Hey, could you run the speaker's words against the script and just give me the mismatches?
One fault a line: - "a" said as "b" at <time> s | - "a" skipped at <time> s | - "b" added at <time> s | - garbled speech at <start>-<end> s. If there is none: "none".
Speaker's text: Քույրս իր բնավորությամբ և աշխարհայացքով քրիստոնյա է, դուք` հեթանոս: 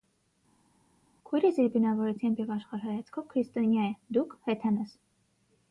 none